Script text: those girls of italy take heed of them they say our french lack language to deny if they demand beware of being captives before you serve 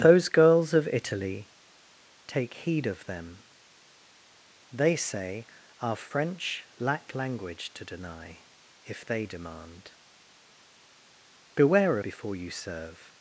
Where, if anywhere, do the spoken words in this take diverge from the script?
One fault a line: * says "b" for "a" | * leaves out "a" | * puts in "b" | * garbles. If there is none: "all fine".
* leaves out "of being captives"